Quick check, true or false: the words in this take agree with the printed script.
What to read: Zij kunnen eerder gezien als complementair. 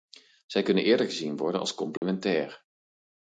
false